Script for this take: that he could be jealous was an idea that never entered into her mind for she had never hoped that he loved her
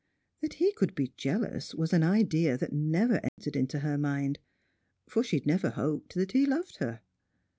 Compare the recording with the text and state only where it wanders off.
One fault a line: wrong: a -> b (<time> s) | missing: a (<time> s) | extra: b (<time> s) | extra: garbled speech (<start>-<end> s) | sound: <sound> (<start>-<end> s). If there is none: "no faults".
sound: dropout (3.3-3.4 s)